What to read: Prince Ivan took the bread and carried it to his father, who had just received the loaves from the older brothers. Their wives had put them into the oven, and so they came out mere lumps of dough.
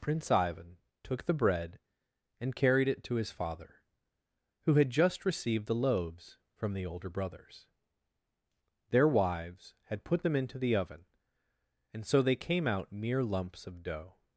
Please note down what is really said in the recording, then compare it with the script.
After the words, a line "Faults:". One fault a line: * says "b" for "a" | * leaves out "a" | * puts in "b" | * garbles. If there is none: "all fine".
Prince Ivan took the bread and carried it to his father, who had just received the loaves from the older brothers. Their wives had put them into the oven, and so they came out mere lumps of dough.
Faults:
all fine